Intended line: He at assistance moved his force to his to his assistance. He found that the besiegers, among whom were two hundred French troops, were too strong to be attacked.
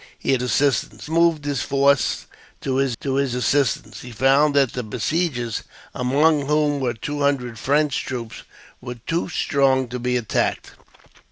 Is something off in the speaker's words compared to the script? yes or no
no